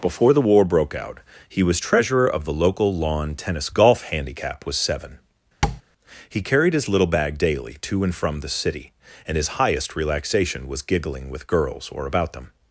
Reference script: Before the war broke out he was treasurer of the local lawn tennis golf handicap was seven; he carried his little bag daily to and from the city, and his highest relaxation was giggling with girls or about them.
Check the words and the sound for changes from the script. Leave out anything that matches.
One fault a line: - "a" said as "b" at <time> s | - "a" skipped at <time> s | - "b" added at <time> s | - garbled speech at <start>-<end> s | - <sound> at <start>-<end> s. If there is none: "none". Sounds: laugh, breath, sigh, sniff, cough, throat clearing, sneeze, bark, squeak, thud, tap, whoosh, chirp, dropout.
- tap at 5.6-5.8 s